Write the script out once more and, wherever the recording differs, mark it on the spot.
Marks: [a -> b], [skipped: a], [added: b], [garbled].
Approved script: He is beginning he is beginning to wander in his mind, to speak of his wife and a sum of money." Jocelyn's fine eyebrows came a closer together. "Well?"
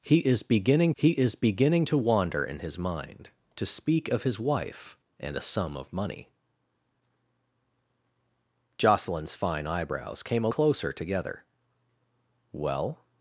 He is beginning he is beginning to wander in his mind, to speak of his wife and a sum of money." Jocelyn's fine eyebrows came a closer together. "Well?"